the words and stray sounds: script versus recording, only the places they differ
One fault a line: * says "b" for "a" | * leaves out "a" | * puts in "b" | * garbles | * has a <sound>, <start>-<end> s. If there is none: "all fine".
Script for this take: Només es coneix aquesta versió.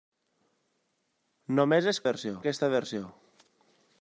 * says "versió" for "coneix"